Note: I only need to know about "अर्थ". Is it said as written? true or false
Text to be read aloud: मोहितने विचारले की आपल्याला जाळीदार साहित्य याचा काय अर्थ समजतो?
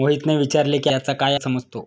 false